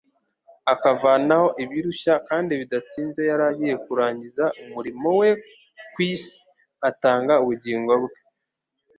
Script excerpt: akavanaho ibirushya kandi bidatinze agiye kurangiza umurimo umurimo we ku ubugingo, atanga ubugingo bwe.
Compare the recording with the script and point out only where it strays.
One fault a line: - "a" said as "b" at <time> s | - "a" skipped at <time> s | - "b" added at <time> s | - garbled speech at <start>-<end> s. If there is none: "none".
- "yari" added at 3.3 s
- "umurimo" skipped at 5.1 s
- "ubugingo" said as "isi" at 6.1 s